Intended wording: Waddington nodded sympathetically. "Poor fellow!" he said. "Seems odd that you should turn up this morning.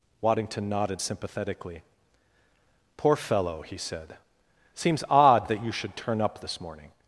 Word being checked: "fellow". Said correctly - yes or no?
yes